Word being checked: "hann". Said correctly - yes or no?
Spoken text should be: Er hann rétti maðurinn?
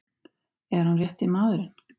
yes